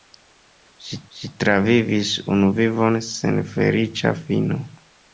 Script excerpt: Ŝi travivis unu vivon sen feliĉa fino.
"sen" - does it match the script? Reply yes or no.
yes